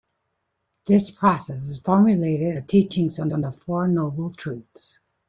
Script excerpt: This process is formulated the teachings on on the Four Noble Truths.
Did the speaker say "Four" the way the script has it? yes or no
yes